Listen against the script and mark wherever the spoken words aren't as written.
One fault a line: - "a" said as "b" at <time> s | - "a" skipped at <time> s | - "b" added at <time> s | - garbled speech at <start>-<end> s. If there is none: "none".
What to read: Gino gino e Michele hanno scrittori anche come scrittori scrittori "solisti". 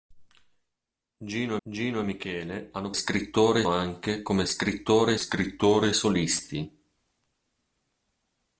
none